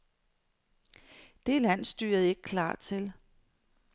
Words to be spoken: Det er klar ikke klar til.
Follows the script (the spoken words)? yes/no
no